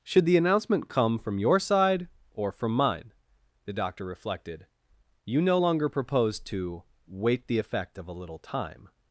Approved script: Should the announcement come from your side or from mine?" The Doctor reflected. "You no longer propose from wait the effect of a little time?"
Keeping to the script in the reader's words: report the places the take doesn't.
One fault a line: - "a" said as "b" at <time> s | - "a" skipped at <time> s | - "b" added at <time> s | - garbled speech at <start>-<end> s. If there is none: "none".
- "from" said as "to" at 6.4 s